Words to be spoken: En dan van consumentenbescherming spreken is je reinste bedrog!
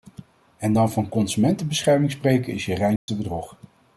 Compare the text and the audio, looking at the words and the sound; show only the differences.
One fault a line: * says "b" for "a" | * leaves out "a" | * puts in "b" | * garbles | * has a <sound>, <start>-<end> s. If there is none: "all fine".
* has a dropout, 3.0-3.1 s